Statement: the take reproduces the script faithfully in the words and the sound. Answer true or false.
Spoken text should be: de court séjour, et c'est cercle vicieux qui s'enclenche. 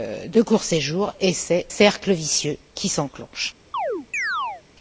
false